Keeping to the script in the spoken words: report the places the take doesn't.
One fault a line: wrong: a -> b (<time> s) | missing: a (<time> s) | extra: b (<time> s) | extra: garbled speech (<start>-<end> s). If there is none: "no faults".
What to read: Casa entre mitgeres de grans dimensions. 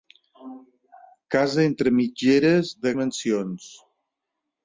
missing: grans (3.0 s)